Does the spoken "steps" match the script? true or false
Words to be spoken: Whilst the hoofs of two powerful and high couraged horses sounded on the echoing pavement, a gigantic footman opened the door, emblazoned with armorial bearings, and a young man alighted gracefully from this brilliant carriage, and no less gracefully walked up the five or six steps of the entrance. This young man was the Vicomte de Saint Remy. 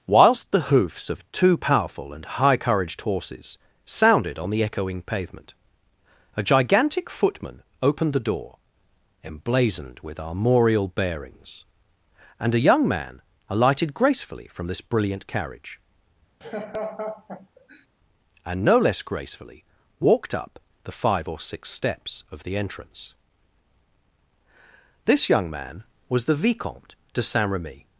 true